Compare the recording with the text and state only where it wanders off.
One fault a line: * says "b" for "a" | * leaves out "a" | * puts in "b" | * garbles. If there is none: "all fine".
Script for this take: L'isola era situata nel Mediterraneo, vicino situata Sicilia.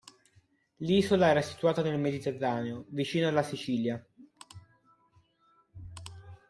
* says "alla" for "situata"